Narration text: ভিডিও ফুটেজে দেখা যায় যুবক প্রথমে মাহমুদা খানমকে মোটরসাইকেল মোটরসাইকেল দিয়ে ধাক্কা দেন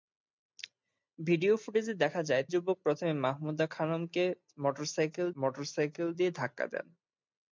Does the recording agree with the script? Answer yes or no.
yes